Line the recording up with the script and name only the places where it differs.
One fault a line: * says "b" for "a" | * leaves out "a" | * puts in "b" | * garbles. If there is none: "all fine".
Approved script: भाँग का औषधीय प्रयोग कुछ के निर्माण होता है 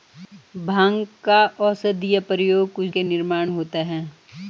all fine